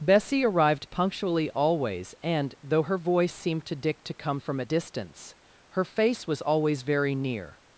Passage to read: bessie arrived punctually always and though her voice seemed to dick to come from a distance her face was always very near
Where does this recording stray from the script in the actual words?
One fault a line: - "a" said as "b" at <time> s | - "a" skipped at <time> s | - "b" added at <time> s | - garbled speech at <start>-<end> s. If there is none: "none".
none